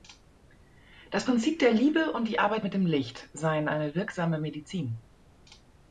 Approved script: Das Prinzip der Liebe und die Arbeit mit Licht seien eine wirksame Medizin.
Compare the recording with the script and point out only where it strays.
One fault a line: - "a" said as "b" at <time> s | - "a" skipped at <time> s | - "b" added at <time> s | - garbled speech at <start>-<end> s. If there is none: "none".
- "dem" added at 2.7 s